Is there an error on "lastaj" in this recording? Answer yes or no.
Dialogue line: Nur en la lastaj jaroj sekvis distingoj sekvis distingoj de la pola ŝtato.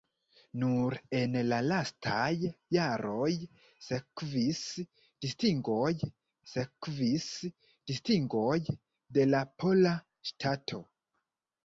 no